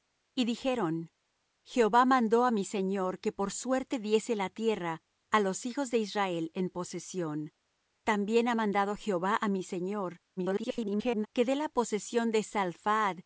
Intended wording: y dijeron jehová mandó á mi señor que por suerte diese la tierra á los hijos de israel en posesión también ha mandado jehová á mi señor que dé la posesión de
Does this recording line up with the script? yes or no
no